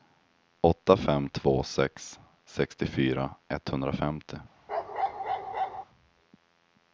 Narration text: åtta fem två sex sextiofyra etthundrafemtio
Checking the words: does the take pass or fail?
pass